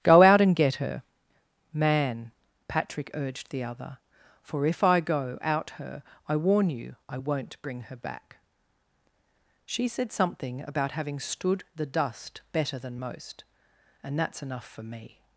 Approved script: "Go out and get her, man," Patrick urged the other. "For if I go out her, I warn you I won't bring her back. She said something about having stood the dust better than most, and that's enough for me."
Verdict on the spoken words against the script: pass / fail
pass